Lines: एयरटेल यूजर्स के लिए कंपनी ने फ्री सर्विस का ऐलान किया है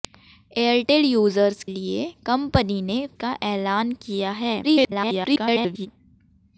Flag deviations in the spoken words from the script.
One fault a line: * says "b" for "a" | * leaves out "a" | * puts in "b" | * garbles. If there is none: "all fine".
* leaves out "के"
* leaves out "फ्री सर्विस"
* garbles